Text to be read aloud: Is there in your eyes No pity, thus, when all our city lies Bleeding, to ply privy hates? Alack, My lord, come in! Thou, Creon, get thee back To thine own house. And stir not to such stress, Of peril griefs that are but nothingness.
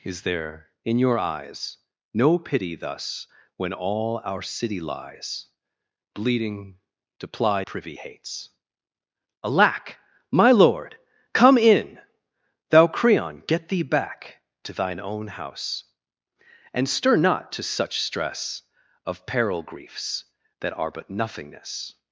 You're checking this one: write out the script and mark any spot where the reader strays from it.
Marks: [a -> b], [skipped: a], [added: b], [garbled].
Is there in your eyes No pity, thus, when all our city lies Bleeding, to ply privy hates? Alack, My lord, come in! Thou, Creon, get thee back To thine own house. And stir not to such stress, Of peril griefs that are but nothingness.